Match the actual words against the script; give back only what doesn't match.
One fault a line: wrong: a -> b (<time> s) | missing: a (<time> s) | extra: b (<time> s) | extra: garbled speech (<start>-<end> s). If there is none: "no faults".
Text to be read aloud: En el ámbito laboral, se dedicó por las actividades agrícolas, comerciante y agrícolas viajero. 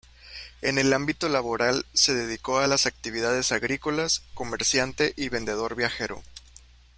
wrong: por -> a (2.6 s)
wrong: agrícolas -> vendedor (5.3 s)